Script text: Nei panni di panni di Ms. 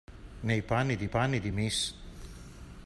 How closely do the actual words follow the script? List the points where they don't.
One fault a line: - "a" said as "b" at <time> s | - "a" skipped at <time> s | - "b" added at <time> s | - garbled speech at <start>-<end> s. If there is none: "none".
none